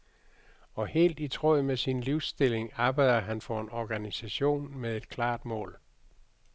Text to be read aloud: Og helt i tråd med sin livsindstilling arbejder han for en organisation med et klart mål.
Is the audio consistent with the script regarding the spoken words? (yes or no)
yes